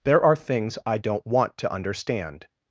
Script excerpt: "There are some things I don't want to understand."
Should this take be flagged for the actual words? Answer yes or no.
yes